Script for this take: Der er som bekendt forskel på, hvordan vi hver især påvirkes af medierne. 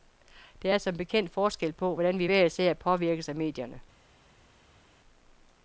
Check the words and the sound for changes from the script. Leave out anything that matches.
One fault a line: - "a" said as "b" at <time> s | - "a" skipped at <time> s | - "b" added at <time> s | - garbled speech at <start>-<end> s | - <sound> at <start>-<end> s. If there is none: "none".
none